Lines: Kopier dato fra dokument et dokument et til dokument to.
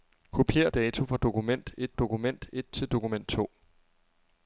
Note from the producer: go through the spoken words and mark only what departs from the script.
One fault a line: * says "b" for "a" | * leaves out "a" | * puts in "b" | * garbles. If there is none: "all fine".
all fine